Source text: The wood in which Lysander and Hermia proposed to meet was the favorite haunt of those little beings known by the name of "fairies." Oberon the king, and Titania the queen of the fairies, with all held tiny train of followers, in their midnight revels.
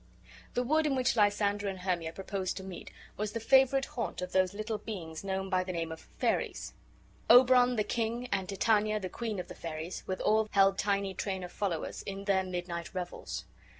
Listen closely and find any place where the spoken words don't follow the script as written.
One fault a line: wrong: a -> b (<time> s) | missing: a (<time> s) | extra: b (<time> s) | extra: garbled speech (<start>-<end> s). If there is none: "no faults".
no faults